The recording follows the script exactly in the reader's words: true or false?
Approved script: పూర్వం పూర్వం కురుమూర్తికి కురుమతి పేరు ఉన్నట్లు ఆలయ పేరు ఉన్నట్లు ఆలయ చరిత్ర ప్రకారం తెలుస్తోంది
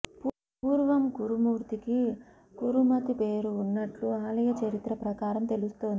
false